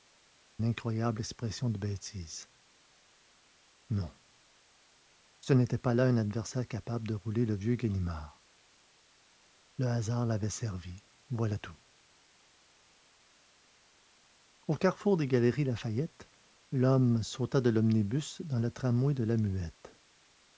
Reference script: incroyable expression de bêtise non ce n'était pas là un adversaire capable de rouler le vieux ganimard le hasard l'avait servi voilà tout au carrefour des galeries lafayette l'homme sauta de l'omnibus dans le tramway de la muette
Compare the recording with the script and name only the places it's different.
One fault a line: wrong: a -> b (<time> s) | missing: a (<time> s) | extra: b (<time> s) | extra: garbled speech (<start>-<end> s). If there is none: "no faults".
no faults